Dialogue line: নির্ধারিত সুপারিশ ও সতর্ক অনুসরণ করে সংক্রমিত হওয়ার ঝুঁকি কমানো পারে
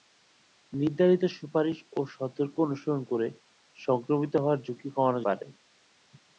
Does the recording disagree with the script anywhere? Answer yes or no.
no